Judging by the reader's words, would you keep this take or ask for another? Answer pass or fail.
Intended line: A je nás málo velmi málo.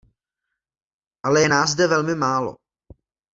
fail